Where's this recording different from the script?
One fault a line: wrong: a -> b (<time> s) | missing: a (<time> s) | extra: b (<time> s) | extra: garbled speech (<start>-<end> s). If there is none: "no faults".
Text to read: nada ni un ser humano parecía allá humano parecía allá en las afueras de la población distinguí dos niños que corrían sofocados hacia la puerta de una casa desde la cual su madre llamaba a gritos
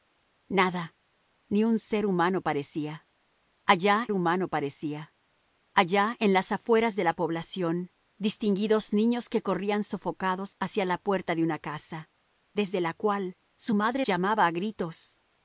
no faults